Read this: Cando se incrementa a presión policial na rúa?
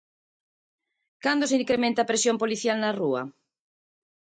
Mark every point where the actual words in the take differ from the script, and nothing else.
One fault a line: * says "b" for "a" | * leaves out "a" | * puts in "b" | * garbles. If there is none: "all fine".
all fine